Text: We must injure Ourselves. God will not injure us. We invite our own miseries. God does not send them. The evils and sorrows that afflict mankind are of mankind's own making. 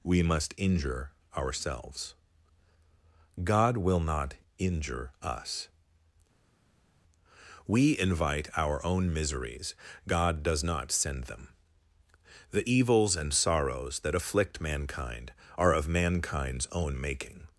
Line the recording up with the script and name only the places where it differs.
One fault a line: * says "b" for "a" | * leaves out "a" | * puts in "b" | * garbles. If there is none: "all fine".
all fine